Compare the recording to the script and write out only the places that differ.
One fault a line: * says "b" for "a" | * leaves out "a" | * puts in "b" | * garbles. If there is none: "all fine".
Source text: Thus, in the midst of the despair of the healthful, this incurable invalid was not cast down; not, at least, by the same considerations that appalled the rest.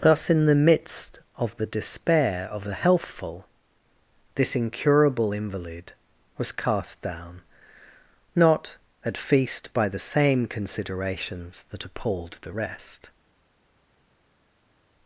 * leaves out "not"
* says "feast" for "least"